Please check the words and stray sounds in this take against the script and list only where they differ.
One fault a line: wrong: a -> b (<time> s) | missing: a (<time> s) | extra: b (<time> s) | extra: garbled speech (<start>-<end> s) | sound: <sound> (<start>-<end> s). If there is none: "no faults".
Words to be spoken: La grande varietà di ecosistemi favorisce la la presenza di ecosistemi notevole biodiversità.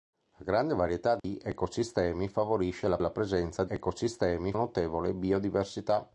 sound: dropout (1.2-1.2 s)